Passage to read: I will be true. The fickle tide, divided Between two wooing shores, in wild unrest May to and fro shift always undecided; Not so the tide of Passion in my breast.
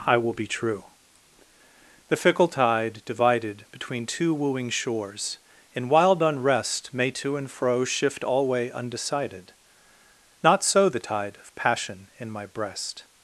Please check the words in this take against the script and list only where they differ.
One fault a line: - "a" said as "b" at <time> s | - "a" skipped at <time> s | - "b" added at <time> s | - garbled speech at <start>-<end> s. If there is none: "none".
- "always" said as "alway" at 8.2 s